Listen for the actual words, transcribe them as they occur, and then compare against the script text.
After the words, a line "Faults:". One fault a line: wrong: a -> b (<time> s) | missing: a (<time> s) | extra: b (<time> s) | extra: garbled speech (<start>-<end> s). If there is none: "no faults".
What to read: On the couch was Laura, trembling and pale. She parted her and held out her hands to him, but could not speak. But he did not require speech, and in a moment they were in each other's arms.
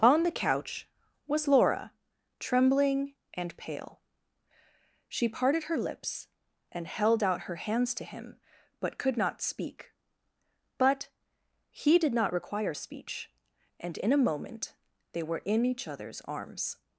On the couch was Laura, trembling and pale. She parted her lips and held out her hands to him, but could not speak. But he did not require speech, and in a moment they were in each other's arms.
Faults:
extra: lips (5.8 s)